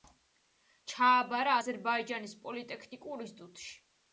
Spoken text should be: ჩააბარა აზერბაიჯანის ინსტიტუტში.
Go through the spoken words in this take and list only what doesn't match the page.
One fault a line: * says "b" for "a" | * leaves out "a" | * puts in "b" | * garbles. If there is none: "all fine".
* puts in "პოლიტექნიკურ"